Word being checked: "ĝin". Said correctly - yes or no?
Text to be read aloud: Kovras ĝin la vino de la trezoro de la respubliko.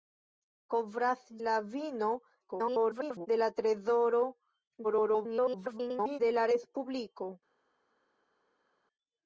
no